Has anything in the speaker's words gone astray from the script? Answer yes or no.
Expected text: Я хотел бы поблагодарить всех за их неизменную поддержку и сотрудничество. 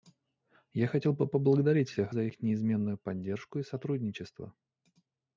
no